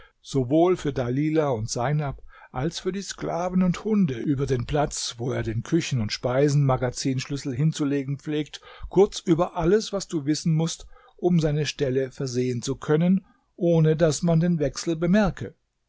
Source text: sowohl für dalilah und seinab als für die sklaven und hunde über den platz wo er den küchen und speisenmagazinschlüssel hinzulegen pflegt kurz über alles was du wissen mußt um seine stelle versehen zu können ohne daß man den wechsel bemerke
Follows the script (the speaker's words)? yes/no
yes